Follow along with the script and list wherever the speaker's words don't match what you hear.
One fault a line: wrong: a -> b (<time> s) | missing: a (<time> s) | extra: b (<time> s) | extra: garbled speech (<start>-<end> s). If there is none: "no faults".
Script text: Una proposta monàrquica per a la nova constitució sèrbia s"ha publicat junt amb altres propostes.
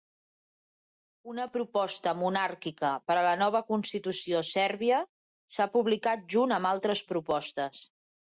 no faults